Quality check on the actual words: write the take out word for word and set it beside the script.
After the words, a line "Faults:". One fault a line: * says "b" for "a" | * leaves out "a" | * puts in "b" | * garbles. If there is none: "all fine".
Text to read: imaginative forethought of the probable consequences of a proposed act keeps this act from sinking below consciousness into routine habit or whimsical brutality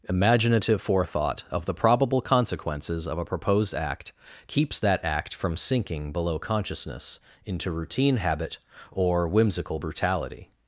imaginative forethought of the probable consequences of a proposed act keeps that act from sinking below consciousness into routine habit or whimsical brutality
Faults:
* says "that" for "this"